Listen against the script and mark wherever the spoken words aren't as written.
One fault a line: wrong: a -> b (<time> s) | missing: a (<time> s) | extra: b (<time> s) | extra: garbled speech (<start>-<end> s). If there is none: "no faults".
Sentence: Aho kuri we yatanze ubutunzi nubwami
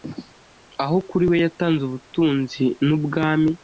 no faults